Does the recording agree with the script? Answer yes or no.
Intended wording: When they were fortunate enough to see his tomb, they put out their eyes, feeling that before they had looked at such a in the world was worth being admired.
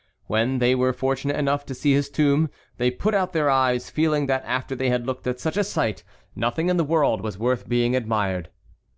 no